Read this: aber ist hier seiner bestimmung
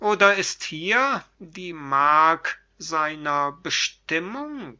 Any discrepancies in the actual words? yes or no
yes